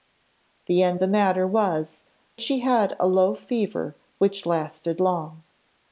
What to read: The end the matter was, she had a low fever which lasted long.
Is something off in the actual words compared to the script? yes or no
no